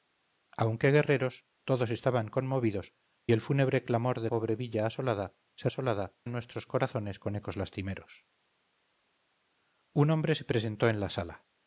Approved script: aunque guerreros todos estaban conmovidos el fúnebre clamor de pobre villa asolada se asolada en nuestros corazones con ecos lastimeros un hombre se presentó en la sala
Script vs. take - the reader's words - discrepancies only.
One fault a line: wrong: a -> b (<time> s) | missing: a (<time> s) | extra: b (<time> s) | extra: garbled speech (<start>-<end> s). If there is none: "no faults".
no faults